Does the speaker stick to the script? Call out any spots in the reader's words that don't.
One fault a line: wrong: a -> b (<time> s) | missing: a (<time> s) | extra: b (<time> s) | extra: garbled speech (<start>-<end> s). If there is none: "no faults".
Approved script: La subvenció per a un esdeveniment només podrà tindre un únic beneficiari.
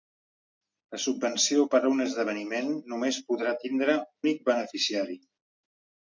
missing: un (4.0 s)